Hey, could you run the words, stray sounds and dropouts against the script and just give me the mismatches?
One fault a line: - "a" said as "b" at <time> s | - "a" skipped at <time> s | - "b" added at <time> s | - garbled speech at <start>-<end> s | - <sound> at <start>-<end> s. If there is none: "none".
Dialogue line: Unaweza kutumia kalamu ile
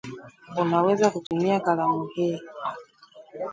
- dropout at 1.3-1.3 s
- "ile" said as "hii" at 2.1 s